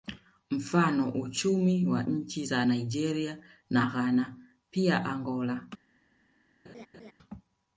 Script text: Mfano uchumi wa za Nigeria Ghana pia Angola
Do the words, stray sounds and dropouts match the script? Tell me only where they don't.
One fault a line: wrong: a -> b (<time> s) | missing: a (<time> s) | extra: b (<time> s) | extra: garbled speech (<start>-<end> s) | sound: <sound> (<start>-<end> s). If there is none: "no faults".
extra: nchi (2.0 s)
extra: na (3.7 s)
sound: laugh (6.6-7.1 s)